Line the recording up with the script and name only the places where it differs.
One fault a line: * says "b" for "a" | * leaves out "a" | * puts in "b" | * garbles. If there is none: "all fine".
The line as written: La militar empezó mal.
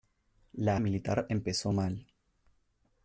all fine